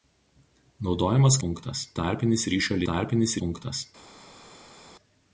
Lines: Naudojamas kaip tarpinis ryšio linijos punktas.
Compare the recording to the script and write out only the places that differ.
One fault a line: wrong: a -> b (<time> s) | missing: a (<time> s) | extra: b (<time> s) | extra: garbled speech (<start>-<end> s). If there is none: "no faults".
wrong: kaip -> punktas (1.4 s)
wrong: linijos -> tarpinis (2.9 s)